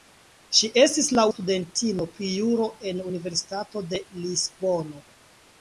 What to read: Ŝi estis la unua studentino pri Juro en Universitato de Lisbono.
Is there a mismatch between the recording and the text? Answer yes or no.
yes